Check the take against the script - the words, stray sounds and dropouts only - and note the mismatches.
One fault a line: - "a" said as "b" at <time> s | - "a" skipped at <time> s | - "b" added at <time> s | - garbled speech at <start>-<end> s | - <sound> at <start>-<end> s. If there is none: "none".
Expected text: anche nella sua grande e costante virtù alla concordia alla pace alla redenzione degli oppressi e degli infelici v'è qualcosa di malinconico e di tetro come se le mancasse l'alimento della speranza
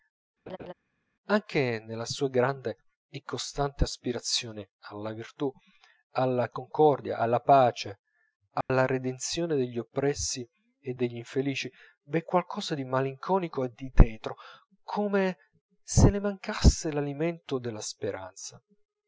- laugh at 0.5-0.7 s
- "aspirazione alla" added at 3.8 s
- dropout at 8.6-8.7 s